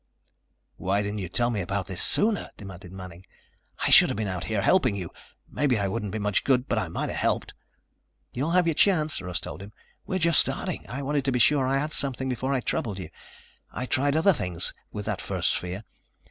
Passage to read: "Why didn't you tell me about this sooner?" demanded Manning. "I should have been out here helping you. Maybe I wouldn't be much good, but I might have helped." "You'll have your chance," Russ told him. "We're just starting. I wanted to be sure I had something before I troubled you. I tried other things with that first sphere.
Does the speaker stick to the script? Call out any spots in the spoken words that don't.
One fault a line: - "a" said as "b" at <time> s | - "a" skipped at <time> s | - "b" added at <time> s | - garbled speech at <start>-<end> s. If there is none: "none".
none